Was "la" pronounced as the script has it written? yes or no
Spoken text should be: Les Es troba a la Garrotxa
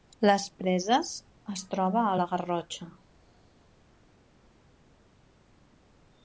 yes